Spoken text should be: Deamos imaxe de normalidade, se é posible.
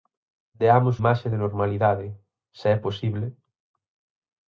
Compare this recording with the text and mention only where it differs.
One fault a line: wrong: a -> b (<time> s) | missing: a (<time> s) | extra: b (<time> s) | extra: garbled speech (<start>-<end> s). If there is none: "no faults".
no faults